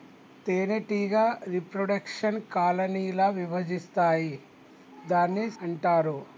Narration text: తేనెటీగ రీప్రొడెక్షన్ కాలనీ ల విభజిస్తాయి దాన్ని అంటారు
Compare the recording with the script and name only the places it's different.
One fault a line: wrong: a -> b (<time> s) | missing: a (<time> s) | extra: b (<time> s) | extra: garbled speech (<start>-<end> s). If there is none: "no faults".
no faults